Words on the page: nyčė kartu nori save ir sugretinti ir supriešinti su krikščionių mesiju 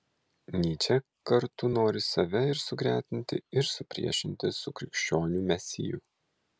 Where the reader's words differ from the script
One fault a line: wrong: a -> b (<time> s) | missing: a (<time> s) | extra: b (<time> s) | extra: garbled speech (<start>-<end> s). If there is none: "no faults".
no faults